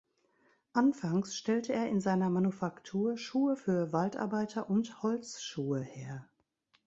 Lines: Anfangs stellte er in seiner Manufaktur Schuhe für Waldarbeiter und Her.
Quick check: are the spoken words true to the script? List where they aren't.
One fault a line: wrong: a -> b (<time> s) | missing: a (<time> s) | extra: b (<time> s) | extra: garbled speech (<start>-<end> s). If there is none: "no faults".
extra: Holzschuhe (5.0 s)